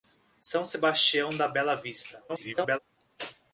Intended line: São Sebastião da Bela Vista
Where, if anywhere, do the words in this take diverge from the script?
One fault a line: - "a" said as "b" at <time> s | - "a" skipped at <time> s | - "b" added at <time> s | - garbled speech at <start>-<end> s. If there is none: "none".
- garbled speech at 2.3-2.8 s